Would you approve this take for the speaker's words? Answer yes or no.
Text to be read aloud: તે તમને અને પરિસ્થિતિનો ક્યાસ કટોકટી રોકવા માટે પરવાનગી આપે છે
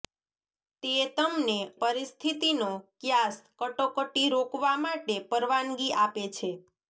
no